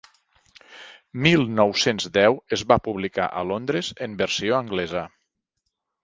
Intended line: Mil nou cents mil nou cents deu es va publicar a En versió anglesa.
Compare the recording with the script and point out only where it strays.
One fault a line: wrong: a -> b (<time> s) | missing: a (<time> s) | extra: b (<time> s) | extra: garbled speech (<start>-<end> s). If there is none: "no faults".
missing: mil nou cents (2.1 s)
extra: Londres (3.5 s)